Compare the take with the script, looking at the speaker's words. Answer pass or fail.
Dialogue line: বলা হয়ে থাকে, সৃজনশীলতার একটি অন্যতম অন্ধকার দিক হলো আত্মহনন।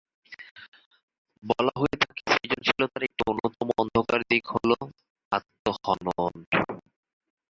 pass